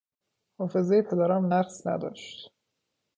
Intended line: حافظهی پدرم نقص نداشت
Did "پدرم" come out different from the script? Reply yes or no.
no